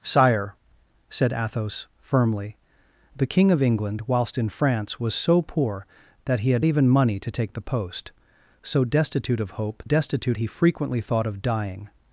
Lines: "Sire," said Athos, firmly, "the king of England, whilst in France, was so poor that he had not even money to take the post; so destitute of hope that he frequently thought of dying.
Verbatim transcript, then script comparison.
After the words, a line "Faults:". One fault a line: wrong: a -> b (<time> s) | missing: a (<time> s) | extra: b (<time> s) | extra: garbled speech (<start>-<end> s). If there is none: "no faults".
"Sire," said Athos, firmly, "the king of England, whilst in France, was so poor that he had even money to take the post; so destitute of hope destitute he frequently thought of dying.
Faults:
missing: not (6.7 s)
wrong: that -> destitute (9.8 s)